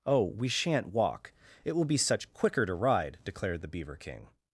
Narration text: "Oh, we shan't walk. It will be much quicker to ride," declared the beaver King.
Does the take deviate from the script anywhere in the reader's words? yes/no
yes